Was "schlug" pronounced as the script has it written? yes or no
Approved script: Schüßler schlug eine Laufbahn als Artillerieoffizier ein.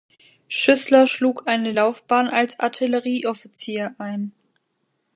yes